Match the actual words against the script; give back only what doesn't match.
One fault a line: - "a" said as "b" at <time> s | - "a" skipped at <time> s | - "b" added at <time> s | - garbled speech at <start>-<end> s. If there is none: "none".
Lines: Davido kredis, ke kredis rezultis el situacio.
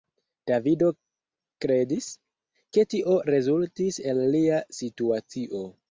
- "kredis" said as "tio" at 2.9 s
- "lia" added at 4.4 s